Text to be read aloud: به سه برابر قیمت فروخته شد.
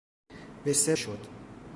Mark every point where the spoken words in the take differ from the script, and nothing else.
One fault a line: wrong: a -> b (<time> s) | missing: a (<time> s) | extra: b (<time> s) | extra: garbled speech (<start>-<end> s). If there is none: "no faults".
missing: برابر قیمت فروخته (1.0 s)